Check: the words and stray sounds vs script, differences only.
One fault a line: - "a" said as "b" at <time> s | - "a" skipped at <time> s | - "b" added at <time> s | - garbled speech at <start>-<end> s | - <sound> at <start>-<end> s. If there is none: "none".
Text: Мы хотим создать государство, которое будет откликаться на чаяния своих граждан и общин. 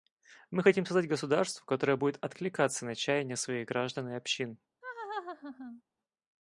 - laugh at 4.8-5.8 s